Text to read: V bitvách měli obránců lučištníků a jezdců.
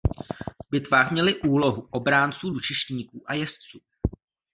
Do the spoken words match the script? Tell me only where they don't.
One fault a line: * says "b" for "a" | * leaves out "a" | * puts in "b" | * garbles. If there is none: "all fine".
* puts in "úlohu"